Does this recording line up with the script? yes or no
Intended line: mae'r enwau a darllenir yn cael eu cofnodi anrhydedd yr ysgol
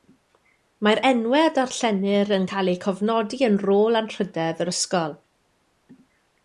no